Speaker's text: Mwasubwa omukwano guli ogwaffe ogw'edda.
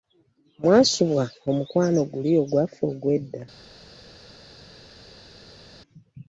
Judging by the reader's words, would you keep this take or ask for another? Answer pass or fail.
pass